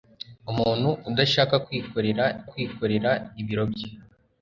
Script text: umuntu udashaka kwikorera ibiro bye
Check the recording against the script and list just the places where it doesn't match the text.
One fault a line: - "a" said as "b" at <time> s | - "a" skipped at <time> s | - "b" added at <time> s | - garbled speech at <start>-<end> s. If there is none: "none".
- "kwikorera" added at 2.5 s